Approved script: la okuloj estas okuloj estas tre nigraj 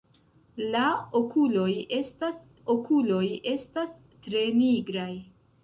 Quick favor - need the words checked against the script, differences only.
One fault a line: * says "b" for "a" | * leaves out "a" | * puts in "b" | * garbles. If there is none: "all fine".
all fine